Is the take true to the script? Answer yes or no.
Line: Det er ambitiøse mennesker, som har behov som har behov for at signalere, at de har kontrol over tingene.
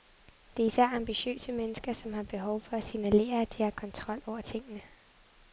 no